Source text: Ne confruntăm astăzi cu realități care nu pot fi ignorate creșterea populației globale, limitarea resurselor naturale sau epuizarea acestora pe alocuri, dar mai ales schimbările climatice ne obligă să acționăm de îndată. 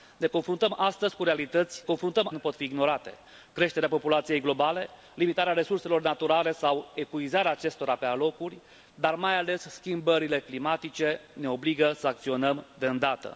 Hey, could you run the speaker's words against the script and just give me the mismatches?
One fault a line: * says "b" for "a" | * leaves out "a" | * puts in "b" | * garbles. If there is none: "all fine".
* says "confruntăm" for "care"